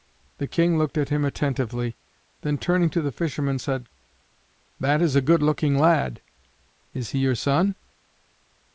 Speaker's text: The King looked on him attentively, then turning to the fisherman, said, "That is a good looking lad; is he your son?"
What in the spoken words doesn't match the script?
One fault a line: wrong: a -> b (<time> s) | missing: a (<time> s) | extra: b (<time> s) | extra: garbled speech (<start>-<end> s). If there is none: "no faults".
wrong: on -> at (1.0 s)